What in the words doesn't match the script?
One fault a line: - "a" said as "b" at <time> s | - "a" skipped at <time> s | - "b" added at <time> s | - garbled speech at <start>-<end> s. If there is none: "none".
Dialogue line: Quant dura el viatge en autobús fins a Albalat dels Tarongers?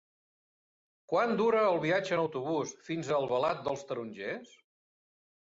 none